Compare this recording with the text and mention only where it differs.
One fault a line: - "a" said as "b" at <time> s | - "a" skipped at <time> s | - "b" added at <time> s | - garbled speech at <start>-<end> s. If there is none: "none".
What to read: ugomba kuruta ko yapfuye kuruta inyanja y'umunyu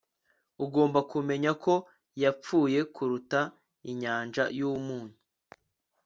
- "kuruta" said as "kumenya" at 1.1 s